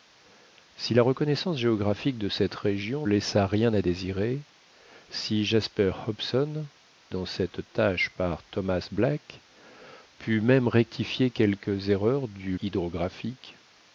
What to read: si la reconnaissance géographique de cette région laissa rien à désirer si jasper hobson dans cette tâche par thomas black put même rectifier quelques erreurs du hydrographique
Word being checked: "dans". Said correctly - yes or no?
yes